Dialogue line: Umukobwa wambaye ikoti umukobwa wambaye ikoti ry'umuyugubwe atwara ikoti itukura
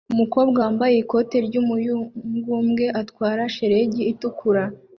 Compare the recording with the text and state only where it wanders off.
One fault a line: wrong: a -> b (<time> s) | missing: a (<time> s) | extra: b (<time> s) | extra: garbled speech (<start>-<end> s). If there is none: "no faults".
missing: umukobwa wambaye ikoti (1.4 s)
wrong: ikoti -> shelegi (3.5 s)